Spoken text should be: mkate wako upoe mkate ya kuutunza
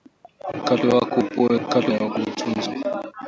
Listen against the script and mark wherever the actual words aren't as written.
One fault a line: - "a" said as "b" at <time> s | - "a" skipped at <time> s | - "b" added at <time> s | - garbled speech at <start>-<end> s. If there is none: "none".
none